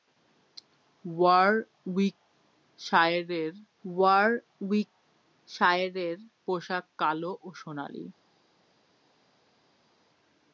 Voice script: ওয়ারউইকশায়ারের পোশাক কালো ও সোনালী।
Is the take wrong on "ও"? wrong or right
right